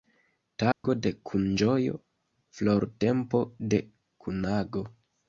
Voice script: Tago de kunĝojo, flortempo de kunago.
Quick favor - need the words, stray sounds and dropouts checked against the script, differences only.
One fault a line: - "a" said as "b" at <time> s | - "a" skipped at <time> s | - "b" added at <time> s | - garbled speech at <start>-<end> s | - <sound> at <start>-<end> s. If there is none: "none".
- dropout at 0.7-0.8 s